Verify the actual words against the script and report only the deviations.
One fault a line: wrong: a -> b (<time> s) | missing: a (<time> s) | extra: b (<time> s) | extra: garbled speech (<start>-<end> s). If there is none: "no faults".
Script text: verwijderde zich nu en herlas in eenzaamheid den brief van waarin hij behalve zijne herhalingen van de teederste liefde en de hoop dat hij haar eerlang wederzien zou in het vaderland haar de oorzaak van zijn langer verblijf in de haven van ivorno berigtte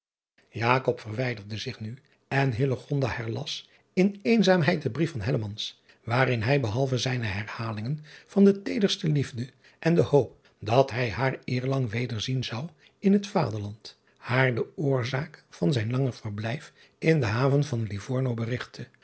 no faults